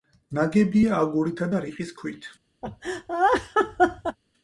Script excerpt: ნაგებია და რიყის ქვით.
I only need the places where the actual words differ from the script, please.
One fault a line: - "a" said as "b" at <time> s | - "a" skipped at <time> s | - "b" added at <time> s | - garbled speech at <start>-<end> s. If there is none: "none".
- "აგურითა" added at 1.0 s